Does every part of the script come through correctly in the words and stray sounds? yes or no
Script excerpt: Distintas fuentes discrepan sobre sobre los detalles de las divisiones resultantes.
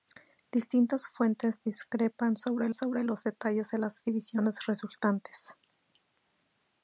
yes